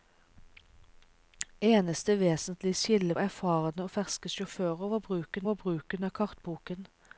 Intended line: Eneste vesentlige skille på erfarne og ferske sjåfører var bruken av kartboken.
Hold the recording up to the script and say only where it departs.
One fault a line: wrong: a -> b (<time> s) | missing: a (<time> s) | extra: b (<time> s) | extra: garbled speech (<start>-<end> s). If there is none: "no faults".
missing: på (3.1 s)
extra: var bruken (5.5 s)